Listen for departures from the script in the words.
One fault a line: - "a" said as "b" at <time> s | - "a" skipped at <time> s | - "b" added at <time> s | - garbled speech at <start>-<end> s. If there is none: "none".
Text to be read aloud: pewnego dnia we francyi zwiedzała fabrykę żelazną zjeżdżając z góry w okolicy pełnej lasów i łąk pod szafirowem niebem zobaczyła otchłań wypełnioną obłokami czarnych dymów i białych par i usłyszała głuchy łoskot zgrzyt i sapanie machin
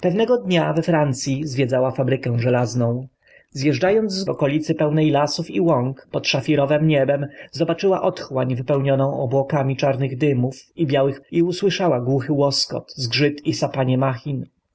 - "góry" skipped at 4.2 s
- "par" skipped at 11.2 s